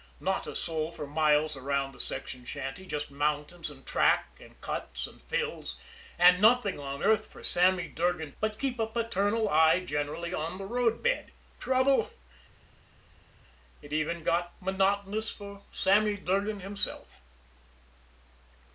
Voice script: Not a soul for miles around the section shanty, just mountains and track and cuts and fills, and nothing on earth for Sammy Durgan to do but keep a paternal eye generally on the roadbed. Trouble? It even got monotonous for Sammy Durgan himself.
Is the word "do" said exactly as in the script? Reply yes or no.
no